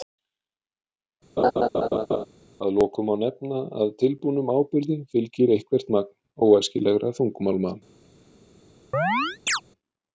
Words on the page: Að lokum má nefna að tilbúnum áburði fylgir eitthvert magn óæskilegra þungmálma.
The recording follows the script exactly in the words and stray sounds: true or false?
false